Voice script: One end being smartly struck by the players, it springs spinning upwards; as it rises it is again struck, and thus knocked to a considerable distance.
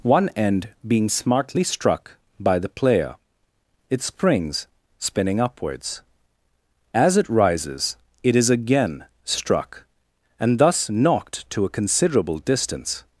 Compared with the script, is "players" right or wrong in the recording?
wrong